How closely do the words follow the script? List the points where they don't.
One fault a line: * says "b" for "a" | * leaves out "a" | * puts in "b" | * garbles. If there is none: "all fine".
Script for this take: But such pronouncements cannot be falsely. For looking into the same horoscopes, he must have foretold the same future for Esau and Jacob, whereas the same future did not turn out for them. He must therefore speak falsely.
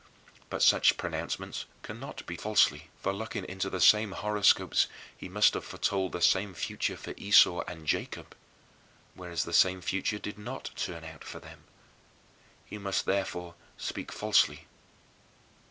all fine